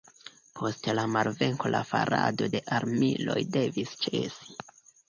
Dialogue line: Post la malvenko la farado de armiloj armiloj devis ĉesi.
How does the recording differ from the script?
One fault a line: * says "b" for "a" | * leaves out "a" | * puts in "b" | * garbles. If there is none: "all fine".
* leaves out "armiloj"